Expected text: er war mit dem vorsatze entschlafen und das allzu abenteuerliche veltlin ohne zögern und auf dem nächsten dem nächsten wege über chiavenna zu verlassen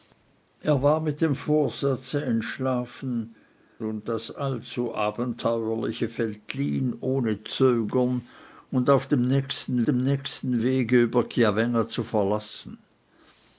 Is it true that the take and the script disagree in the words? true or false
false